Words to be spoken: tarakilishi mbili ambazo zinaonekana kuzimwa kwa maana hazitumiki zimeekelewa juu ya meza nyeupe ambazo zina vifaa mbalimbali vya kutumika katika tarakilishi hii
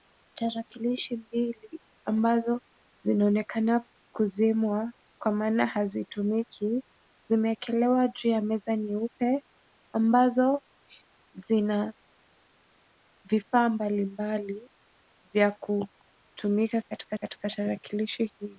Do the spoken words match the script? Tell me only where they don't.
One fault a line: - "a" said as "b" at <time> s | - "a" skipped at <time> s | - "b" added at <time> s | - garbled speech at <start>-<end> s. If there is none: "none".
- "katika" added at 17.1 s